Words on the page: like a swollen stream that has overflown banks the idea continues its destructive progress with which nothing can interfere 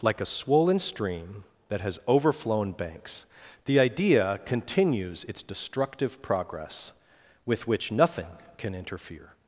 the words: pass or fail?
pass